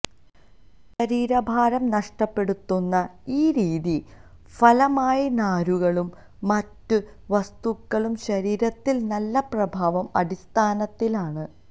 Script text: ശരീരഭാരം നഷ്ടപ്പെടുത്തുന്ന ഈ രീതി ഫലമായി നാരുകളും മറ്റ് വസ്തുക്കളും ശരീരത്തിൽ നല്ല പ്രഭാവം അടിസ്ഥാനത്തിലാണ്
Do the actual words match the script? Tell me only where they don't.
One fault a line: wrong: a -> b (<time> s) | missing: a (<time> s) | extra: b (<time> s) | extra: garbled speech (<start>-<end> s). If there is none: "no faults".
no faults